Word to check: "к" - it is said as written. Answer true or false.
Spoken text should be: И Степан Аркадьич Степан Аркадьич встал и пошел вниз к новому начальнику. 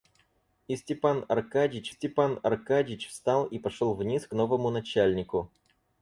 true